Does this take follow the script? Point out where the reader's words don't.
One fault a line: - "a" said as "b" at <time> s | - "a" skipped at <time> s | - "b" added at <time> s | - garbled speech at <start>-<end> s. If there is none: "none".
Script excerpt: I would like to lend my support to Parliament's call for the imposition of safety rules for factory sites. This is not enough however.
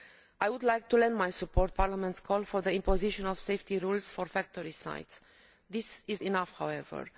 - "to" skipped at 1.7 s
- "not" skipped at 6.2 s